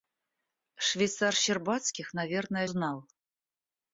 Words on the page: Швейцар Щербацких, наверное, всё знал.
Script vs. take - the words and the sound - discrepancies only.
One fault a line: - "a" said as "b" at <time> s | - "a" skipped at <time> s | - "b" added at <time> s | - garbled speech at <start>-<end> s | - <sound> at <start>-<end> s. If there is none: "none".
- "всё" skipped at 2.7 s